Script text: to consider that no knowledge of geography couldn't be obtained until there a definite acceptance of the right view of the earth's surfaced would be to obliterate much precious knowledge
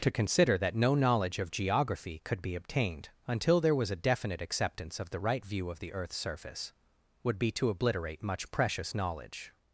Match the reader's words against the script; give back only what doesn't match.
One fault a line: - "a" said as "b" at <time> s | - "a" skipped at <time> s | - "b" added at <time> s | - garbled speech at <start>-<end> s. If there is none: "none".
- "couldn't" said as "could" at 2.2 s
- "was" added at 3.8 s
- "surfaced" said as "surface" at 6.2 s